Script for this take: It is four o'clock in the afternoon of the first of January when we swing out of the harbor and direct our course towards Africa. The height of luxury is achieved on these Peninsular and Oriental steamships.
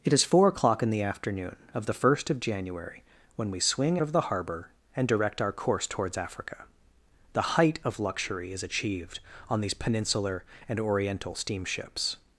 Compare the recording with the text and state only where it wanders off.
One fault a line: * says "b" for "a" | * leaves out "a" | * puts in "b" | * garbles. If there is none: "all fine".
* leaves out "out"